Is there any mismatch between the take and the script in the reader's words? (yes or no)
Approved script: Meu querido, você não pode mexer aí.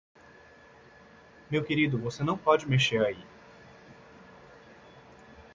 no